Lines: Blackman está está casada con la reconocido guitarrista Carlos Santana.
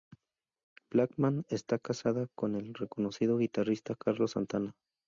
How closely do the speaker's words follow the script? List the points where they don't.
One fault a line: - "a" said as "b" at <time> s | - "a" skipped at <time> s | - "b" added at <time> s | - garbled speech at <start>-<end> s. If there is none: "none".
- "está" skipped at 1.8 s
- "la" said as "el" at 2.5 s